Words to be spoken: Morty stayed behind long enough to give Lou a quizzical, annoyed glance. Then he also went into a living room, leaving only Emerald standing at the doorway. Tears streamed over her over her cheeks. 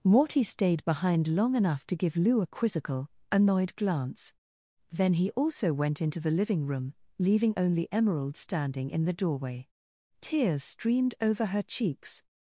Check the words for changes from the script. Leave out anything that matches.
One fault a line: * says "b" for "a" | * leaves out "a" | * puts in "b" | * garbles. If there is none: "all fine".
* says "the" for "a"
* says "in" for "at"
* leaves out "over her"